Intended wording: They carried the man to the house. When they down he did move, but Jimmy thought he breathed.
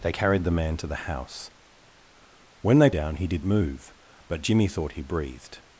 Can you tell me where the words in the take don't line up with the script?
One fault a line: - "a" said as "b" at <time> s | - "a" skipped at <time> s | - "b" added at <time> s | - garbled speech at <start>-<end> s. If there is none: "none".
none